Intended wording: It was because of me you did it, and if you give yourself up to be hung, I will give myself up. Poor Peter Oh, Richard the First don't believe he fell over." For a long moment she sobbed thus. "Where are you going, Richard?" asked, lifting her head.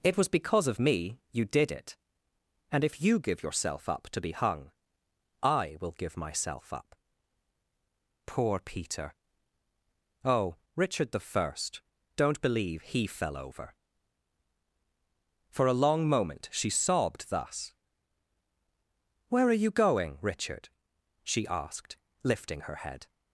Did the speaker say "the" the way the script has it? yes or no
yes